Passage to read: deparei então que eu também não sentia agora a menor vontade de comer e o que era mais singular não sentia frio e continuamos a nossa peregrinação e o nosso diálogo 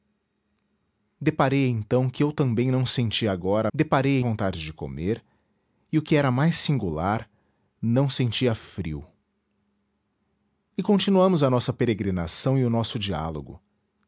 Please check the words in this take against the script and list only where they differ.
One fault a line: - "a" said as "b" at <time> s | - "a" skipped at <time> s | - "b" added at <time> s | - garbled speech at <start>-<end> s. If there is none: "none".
- "menor" said as "deparei" at 3.7 s